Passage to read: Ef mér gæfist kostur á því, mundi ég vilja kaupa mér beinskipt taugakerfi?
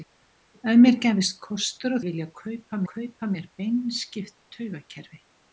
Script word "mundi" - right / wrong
wrong